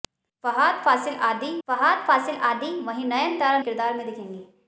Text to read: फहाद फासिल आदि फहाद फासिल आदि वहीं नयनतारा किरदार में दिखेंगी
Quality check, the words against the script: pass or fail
pass